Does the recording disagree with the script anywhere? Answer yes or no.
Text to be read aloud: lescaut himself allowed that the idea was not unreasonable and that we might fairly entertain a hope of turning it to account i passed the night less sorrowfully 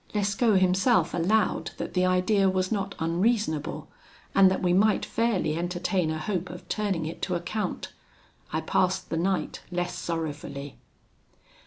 no